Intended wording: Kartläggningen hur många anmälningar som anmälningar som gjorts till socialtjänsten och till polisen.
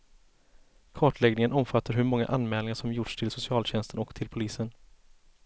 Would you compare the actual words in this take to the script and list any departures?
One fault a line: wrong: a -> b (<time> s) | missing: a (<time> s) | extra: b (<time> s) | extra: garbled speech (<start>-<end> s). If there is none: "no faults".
extra: omfattar (1.5 s)
missing: anmälningar som (2.9 s)